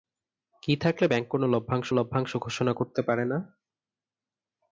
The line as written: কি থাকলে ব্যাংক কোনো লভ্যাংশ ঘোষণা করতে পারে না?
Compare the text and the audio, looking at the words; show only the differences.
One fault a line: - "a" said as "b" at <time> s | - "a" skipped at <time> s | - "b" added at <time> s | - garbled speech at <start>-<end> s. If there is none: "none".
- "লভ্যাংশ" added at 1.9 s